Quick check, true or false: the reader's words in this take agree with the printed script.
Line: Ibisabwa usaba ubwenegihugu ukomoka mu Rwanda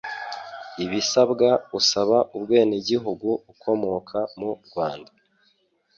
true